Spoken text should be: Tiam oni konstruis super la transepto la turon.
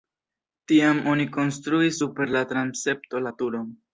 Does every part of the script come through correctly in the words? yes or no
yes